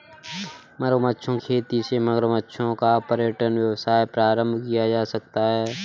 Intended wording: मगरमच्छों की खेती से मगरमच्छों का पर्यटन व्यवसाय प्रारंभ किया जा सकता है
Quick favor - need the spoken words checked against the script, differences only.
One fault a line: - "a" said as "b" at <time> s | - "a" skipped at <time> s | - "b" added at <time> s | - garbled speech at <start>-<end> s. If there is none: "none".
- "की" skipped at 1.4 s